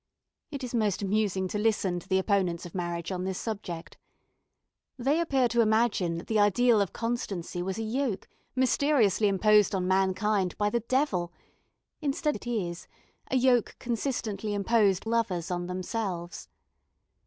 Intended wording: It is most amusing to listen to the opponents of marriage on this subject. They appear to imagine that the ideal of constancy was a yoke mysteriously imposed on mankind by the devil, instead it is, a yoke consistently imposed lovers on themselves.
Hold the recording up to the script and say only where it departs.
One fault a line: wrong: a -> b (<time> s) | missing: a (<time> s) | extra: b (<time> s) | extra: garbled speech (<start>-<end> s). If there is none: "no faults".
no faults